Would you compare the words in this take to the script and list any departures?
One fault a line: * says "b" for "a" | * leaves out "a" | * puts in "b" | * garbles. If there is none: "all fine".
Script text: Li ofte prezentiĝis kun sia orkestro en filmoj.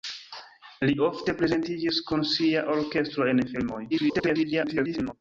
* garbles